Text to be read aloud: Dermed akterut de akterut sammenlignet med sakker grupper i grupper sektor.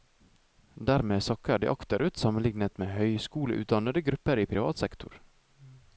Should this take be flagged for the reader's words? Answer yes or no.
yes